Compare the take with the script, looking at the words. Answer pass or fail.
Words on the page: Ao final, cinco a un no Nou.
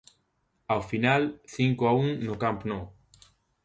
fail